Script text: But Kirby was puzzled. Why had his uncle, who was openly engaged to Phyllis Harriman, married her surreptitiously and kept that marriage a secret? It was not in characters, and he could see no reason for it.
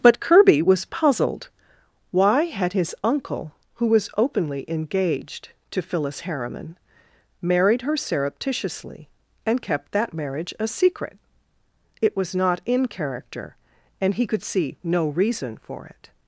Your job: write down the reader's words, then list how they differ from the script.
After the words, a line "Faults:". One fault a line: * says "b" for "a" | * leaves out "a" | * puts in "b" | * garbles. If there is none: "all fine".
But Kirby was puzzled. Why had his uncle, who was openly engaged to Phyllis Harriman, married her surreptitiously and kept that marriage a secret? It was not in character, and he could see no reason for it.
Faults:
* says "character" for "characters"